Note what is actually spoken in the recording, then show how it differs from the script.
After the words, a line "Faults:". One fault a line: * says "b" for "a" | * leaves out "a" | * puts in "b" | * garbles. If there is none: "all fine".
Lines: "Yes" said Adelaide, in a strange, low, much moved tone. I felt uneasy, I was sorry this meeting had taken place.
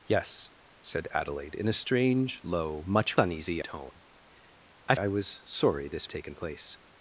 "Yes" said Adelaide, in a strange, low, much uneasy tone. I I was sorry this taken place.
Faults:
* says "uneasy" for "moved"
* leaves out "felt uneasy"
* leaves out "meeting had"